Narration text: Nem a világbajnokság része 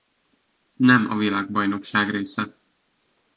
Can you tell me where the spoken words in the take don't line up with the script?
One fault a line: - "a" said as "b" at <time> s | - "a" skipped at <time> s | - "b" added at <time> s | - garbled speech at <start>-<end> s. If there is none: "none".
none